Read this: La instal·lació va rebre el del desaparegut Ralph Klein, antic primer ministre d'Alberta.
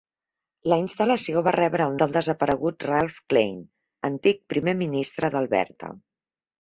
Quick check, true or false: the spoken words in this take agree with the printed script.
true